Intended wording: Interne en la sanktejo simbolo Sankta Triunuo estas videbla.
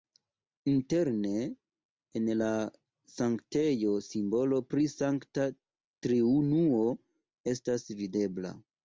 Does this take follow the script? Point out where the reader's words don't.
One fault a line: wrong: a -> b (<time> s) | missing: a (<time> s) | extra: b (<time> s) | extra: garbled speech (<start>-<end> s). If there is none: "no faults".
extra: pri (4.7 s)